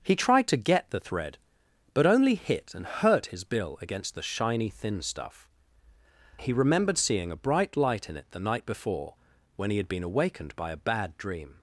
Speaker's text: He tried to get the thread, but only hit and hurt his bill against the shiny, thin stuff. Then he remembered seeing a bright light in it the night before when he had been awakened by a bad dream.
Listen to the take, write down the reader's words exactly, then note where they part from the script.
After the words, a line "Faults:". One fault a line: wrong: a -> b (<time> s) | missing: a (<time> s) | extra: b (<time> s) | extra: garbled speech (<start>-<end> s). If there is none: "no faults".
He tried to get the thread, but only hit and hurt his bill against the shiny, thin stuff. He remembered seeing a bright light in it the night before when he had been awakened by a bad dream.
Faults:
missing: Then (5.5 s)